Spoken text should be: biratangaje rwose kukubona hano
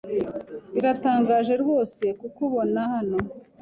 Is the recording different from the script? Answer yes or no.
no